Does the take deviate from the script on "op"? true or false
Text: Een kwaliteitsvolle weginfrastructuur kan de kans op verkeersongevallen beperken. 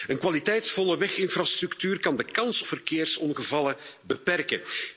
true